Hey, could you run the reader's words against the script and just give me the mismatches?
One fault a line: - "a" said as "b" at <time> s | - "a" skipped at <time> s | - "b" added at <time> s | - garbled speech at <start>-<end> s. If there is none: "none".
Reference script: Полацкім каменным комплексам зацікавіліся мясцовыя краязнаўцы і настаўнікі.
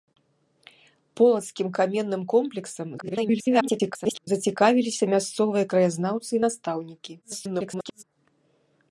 - garbled speech at 3.0-4.3 s
- garbled speech at 7.2-8.0 s